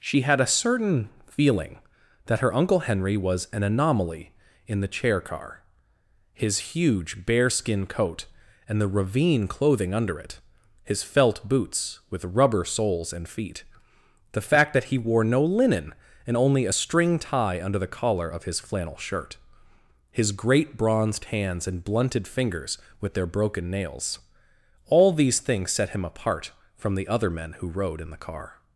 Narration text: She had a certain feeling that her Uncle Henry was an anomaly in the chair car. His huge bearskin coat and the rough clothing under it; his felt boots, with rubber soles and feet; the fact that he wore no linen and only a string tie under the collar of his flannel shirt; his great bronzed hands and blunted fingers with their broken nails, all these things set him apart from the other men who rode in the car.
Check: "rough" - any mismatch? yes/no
yes